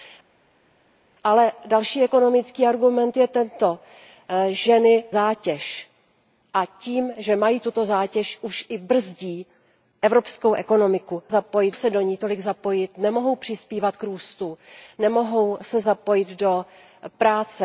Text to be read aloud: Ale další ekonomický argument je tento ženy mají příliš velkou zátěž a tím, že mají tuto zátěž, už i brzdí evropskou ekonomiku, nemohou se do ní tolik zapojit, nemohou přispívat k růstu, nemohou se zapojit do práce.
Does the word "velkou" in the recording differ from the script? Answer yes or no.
yes